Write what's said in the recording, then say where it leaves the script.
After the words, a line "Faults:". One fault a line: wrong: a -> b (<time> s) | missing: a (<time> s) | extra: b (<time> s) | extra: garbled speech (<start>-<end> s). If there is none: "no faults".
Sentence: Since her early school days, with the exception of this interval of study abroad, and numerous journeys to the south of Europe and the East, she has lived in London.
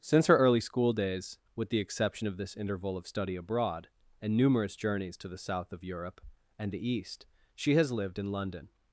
Since her early school days, with the exception of this interval of study abroad, and numerous journeys to the south of Europe and the East, she has lived in London.
Faults:
no faults